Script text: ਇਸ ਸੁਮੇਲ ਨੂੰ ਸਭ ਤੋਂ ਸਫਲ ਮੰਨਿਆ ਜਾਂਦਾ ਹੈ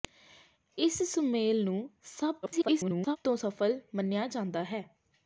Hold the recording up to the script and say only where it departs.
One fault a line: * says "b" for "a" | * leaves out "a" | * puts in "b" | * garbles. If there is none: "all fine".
* garbles